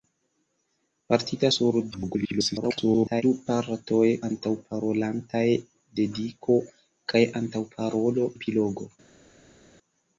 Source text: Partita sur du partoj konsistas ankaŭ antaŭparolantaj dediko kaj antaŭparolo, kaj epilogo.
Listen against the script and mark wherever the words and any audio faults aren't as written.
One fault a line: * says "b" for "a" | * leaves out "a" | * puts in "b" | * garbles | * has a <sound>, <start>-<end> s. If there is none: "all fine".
* garbles
* leaves out "konsistas ankaŭ"
* leaves out "kaj"